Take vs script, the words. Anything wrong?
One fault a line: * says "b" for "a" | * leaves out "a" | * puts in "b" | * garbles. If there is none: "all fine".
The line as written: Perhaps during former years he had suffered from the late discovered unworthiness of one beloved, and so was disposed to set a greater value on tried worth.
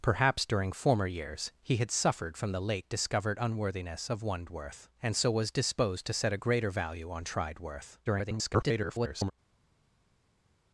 * says "worth" for "beloved"
* garbles